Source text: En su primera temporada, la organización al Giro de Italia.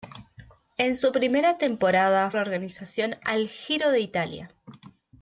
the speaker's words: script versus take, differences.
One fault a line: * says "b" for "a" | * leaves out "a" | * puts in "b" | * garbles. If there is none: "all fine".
all fine